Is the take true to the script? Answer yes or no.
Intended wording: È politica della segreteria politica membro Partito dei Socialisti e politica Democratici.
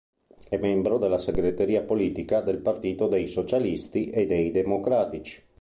no